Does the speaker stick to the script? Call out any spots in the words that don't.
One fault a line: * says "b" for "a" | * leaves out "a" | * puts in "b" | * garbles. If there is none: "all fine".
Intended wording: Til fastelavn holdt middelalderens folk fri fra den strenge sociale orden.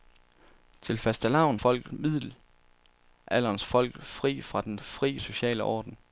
* says "folk" for "holdt"
* says "fri" for "strenge"